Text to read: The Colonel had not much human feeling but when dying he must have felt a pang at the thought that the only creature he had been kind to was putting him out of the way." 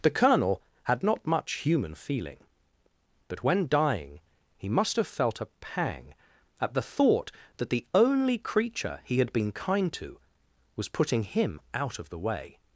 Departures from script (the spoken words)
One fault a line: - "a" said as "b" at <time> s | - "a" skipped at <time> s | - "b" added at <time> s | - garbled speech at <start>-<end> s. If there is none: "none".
none